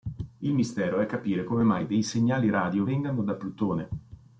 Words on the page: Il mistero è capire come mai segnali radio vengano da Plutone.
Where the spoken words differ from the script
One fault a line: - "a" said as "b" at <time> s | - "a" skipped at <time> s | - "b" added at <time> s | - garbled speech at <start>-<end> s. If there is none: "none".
- "dei" added at 1.9 s